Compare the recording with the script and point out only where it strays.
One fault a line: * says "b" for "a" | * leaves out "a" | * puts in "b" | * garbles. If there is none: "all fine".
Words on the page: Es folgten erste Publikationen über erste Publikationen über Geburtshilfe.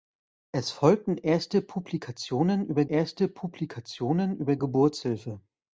all fine